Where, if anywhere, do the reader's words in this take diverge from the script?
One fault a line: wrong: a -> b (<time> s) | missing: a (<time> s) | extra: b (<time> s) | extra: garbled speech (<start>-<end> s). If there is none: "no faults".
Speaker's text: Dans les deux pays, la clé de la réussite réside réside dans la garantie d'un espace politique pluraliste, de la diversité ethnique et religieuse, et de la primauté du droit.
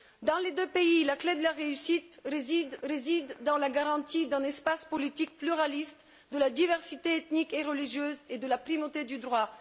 no faults